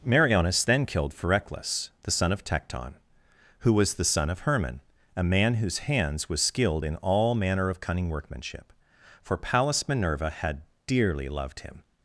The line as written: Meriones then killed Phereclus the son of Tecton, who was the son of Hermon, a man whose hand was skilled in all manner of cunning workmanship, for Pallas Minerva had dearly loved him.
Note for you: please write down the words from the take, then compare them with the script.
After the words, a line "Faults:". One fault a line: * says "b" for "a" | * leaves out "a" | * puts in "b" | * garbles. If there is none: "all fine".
Meriones then killed Phereclus the son of Tecton, who was the son of Hermon, a man whose hands was skilled in all manner of cunning workmanship, for Pallas Minerva had dearly loved him.
Faults:
* says "hands" for "hand"